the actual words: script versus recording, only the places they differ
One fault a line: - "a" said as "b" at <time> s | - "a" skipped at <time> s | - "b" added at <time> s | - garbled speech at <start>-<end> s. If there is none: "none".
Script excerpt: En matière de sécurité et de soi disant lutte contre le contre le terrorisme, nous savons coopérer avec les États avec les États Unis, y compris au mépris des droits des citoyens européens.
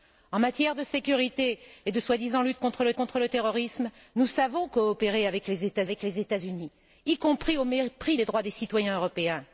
none